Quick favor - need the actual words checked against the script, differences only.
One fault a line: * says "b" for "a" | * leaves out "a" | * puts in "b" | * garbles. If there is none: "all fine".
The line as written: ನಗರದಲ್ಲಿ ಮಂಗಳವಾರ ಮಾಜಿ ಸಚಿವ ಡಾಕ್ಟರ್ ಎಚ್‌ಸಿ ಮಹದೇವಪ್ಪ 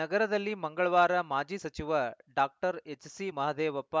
all fine